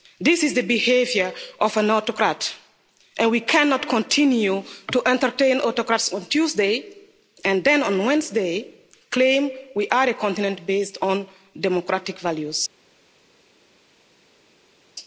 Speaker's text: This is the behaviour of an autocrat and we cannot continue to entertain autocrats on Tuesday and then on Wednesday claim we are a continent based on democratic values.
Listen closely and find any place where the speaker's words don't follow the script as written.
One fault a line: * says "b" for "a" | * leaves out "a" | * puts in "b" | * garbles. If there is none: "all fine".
all fine